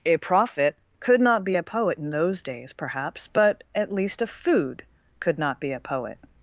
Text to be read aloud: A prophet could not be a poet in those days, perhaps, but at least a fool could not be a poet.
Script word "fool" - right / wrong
wrong